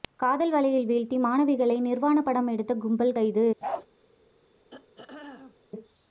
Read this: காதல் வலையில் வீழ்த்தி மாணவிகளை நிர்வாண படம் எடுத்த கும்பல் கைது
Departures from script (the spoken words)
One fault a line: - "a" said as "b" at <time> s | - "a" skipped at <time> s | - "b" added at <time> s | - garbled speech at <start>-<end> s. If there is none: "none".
none